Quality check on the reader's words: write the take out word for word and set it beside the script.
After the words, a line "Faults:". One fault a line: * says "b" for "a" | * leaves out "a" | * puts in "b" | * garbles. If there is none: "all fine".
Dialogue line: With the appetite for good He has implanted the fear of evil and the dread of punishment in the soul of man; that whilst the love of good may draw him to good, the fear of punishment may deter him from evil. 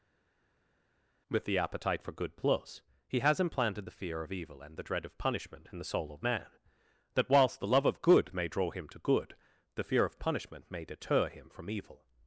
With the appetite for good plus He has implanted the fear of evil and the dread of punishment in the soul of man; that whilst the love of good may draw him to good, the fear of punishment may deter him from evil.
Faults:
* puts in "plus"